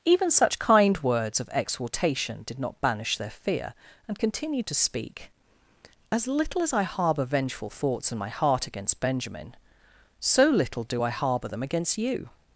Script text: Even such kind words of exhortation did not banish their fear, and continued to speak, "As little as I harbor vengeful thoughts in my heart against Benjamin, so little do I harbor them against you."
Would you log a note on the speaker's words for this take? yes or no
no